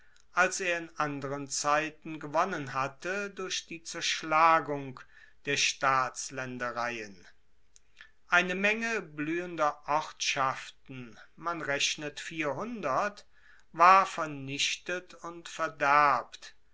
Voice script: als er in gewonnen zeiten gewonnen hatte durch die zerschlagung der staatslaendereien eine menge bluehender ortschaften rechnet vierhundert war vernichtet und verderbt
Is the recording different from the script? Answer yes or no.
yes